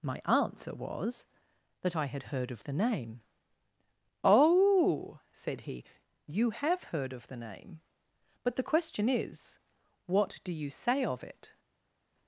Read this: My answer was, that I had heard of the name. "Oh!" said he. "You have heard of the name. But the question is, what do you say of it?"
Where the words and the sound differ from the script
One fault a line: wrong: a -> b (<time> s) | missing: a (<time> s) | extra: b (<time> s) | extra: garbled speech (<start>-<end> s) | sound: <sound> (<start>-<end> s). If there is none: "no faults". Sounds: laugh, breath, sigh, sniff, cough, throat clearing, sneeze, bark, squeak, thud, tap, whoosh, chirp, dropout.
no faults